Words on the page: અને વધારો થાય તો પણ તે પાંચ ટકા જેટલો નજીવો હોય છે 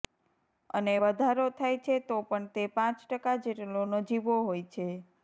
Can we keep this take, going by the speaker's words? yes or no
no